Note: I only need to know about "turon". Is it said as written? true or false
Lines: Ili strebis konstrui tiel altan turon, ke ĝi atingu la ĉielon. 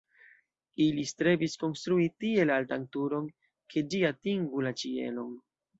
true